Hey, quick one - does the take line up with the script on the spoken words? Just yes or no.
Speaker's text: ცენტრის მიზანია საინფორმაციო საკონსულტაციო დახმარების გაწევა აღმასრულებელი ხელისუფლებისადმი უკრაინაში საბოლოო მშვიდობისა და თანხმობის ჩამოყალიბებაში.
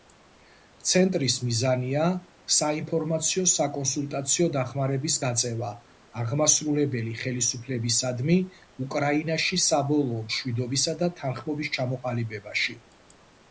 yes